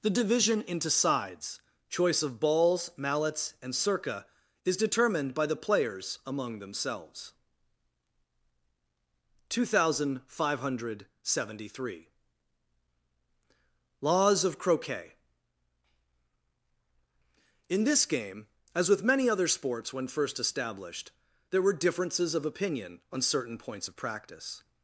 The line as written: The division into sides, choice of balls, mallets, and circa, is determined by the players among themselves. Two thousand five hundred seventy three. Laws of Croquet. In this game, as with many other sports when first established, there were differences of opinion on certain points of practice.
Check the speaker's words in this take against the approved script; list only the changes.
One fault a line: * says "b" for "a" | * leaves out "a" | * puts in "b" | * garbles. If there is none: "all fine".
all fine